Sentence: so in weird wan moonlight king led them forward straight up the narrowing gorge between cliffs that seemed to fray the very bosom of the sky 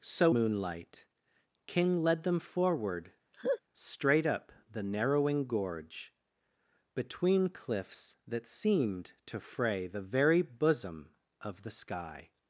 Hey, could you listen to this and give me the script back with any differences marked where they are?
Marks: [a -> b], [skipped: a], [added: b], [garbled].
so [skipped: in weird wan] moonlight king led them forward straight up the narrowing gorge between cliffs that seemed to fray the very bosom of the sky